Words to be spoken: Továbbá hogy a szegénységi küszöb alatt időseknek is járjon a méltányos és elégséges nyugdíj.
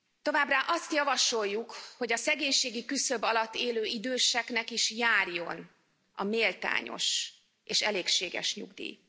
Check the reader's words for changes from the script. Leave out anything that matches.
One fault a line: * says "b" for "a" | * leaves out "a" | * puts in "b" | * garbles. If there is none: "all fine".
* puts in "azt javasoljuk"
* puts in "élő"